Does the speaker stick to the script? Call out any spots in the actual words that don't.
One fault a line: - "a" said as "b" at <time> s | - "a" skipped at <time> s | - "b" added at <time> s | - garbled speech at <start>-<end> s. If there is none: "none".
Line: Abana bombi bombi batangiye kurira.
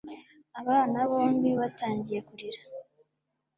- "bombi" skipped at 1.5 s